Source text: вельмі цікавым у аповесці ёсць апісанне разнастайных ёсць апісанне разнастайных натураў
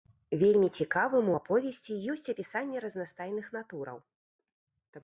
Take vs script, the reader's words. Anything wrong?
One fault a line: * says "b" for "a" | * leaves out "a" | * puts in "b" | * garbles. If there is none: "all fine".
* leaves out "ёсць апісанне разнастайных"